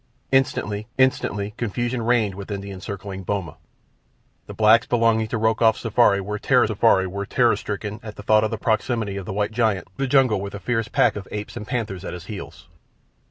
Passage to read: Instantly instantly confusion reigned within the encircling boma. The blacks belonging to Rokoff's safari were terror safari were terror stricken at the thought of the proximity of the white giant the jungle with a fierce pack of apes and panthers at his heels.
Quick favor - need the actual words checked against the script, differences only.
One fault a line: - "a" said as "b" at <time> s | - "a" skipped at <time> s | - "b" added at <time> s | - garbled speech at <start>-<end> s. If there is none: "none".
none